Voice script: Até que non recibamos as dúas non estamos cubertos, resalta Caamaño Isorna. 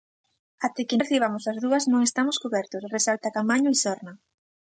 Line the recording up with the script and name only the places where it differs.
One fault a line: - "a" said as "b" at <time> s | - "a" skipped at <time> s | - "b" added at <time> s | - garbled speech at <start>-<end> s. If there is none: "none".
- "non" skipped at 1.0 s